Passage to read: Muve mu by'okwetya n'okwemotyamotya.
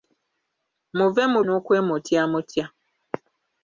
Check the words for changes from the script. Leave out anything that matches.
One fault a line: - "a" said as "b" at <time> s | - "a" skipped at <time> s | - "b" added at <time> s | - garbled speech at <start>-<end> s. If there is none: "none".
- "by'okwetya" skipped at 1.4 s